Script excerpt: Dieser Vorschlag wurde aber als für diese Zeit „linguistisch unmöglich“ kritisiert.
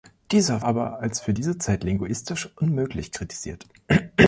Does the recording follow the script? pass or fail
fail